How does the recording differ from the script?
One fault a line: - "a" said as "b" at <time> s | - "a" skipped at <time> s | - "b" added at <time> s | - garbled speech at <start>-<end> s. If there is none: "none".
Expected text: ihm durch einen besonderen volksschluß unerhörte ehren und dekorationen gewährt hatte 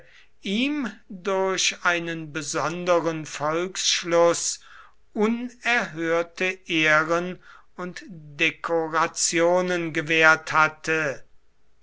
none